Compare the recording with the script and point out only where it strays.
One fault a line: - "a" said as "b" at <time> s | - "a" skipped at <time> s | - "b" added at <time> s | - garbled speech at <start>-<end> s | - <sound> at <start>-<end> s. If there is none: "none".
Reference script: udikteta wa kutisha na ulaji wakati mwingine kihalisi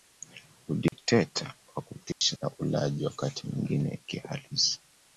- dropout at 0.9-0.9 s
- dropout at 2.1-2.2 s